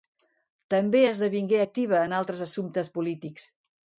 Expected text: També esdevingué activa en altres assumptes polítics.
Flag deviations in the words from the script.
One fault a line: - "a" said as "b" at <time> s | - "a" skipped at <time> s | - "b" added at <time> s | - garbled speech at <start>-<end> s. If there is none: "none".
none